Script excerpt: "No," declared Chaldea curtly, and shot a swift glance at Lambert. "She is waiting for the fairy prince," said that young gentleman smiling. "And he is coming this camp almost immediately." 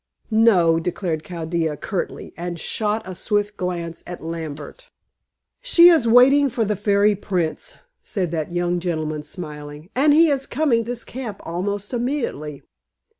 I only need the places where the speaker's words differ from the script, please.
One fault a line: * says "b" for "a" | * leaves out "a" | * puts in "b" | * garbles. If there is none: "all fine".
all fine